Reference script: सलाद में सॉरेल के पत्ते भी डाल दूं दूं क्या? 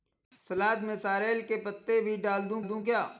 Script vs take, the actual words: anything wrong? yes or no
no